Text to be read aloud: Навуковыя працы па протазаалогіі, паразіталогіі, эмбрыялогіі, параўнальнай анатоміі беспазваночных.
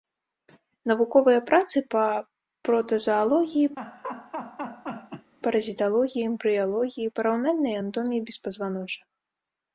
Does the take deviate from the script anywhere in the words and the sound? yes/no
yes